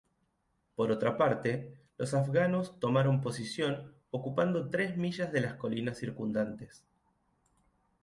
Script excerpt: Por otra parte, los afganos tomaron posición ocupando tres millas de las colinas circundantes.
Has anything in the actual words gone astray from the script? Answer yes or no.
no